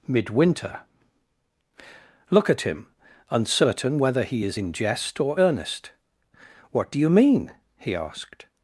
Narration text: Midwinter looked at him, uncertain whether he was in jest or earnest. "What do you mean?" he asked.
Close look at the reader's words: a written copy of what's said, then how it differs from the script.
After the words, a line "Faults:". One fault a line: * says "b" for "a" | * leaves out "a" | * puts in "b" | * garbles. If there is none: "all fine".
Midwinter look at him, uncertain whether he is in jest or earnest. "What do you mean?" he asked.
Faults:
* says "look" for "looked"
* says "is" for "was"